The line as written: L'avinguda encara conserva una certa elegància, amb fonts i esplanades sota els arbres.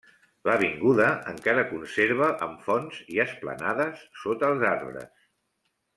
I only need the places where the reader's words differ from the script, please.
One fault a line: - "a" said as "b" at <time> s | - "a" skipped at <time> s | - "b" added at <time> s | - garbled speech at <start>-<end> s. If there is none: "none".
- "una certa elegància" skipped at 2.3 s